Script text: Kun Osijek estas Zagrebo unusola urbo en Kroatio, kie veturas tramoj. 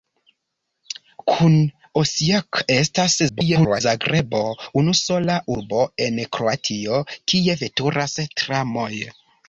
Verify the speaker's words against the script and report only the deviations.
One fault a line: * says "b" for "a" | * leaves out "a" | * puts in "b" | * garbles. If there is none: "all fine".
* garbles